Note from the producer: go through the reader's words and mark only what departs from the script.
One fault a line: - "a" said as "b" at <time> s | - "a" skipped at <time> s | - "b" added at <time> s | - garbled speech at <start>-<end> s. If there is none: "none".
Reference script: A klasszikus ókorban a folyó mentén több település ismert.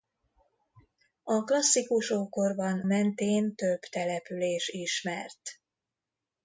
- "a folyó" skipped at 2.8 s